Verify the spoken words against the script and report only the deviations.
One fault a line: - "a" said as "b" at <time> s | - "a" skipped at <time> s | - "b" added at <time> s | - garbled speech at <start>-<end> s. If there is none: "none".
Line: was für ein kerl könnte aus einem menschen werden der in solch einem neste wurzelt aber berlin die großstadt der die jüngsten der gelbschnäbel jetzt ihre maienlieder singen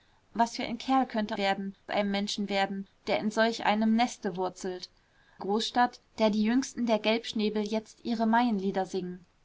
- "aus" said as "werden" at 1.4 s
- "aber berlin die" skipped at 4.9 s